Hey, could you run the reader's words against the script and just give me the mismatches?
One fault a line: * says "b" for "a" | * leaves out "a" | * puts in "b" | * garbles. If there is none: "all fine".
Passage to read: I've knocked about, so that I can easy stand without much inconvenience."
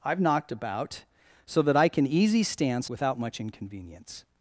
all fine